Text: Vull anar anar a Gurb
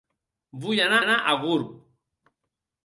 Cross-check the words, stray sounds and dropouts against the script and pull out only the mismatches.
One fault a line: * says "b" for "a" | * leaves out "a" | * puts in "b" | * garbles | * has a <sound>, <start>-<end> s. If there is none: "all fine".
all fine